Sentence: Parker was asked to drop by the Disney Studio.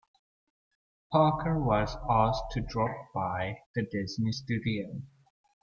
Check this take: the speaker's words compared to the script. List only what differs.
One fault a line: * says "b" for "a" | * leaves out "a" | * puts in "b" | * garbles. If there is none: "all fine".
all fine